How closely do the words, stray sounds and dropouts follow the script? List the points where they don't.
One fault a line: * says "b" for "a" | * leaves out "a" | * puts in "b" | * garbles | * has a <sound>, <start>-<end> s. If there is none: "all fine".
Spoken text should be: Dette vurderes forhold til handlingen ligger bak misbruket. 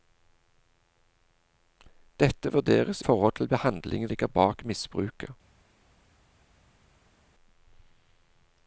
all fine